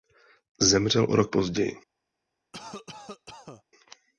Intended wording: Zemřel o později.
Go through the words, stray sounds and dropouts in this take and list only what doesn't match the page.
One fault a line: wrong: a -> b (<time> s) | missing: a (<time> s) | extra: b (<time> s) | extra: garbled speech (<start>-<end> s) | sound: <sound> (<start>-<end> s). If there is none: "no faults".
extra: rok (1.2 s)
sound: cough (2.5-3.6 s)